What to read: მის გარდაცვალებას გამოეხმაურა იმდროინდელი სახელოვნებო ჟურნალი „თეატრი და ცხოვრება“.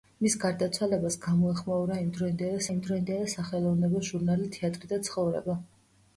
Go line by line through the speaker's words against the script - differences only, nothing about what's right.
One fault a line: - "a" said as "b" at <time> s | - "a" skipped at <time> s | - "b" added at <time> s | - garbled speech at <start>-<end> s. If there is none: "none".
- "იმდროინდელი" added at 2.7 s